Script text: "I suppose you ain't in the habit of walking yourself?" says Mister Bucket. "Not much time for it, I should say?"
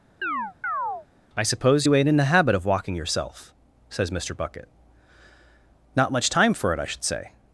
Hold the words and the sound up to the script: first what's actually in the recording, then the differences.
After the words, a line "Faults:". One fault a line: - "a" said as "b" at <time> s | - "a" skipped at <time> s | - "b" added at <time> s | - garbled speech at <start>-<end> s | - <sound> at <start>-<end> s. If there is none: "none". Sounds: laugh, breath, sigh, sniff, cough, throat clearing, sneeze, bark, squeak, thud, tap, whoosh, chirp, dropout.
"I suppose you ain't in the habit of walking yourself?" says Mister Bucket. "Not much time for it, I should say?"
Faults:
- chirp at 0.2-1.1 s